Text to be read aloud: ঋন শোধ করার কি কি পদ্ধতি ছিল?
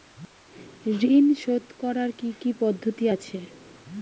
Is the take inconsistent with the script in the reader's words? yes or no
yes